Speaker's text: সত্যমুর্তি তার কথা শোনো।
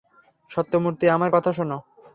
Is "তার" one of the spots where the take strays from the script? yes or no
yes